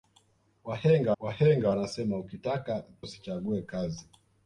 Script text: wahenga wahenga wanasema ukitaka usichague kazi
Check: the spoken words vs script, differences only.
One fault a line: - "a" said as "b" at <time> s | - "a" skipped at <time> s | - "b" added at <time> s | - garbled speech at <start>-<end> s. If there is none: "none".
none